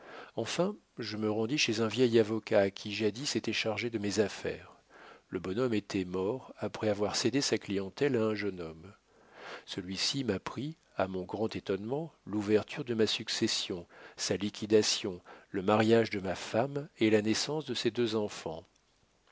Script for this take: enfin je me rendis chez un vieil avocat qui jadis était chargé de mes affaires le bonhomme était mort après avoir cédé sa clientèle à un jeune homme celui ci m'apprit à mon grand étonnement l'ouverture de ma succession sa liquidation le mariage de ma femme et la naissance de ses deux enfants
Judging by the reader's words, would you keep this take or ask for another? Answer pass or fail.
pass